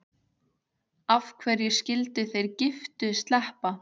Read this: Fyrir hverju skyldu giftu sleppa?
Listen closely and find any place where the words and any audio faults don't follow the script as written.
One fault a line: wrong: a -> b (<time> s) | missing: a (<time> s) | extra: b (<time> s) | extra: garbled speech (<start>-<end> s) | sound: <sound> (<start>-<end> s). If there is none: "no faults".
wrong: Fyrir -> Af (1.1 s)
extra: þeir (2.3 s)